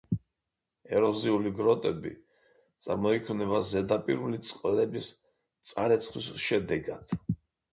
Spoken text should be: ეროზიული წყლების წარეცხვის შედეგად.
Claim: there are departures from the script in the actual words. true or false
true